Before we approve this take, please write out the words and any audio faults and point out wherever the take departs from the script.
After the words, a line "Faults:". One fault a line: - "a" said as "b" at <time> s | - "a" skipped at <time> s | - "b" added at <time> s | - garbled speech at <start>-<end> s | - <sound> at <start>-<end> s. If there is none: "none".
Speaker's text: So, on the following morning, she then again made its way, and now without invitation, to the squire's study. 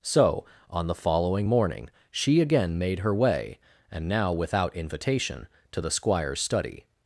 So, on the following morning, she again made her way, and now without invitation, to the squire's study.
Faults:
- "then" skipped at 2.4 s
- "its" said as "her" at 3.0 s